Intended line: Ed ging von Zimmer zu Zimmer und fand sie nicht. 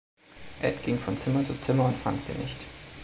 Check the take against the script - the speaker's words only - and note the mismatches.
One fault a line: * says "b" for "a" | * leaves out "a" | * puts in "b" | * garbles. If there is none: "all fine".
all fine